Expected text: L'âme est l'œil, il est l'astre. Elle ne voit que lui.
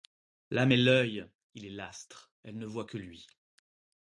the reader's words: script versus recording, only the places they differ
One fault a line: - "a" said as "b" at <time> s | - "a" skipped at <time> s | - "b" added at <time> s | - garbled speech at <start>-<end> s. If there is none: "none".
none